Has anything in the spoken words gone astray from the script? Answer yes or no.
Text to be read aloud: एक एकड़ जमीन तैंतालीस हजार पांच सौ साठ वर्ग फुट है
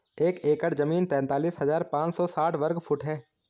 no